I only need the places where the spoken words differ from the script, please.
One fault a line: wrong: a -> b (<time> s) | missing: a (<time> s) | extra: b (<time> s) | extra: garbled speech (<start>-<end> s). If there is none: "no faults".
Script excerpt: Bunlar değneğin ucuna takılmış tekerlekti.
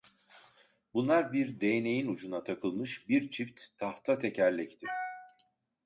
extra: bir (1.3 s)
extra: bir çift tahta (3.1 s)